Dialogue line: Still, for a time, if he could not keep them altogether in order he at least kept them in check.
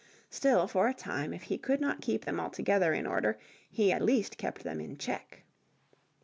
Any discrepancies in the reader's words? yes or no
no